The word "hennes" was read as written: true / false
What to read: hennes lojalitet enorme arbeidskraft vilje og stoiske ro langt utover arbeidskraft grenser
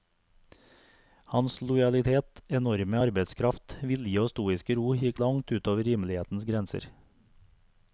false